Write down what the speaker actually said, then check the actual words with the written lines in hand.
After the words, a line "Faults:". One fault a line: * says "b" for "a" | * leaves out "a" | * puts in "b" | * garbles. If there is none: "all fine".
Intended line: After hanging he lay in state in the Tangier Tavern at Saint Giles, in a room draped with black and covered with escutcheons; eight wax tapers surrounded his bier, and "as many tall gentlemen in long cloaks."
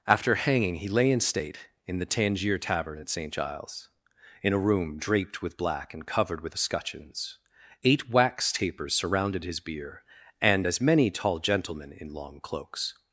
After hanging he lay in state in the Tangier Tavern at Saint Giles, in a room draped with black and covered with escutcheons; eight wax tapers surrounded his bier, and "as many tall gentlemen in long cloaks."
Faults:
all fine